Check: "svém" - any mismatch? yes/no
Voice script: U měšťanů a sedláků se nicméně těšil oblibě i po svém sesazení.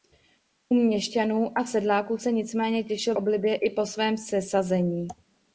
no